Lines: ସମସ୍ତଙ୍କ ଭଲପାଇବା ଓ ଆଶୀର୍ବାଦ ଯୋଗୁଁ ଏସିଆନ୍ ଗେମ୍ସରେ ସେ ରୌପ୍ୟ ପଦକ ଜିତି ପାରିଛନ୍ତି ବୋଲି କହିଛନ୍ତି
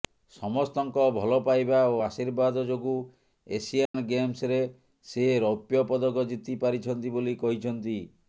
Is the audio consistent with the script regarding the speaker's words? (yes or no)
yes